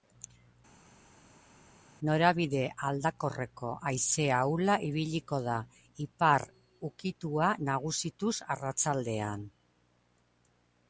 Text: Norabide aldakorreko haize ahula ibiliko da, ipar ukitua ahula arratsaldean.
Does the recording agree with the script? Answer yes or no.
no